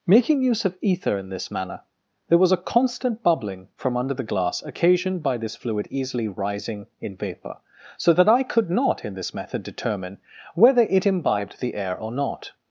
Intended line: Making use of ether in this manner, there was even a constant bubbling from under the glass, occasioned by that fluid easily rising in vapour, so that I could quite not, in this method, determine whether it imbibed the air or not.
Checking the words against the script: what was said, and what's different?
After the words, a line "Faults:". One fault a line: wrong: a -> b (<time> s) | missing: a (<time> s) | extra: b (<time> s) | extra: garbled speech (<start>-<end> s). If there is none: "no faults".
Making use of ether in this manner, there was a constant bubbling from under the glass, occasioned by this fluid easily rising in vapour, so that I could not, in this method, determine whether it imbibed the air or not.
Faults:
missing: even (2.5 s)
wrong: that -> this (5.4 s)
missing: quite (8.7 s)